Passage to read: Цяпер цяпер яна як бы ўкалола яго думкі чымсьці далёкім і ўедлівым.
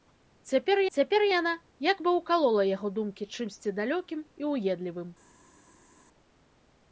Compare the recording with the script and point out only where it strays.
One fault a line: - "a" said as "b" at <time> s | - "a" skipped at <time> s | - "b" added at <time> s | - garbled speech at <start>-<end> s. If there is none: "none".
none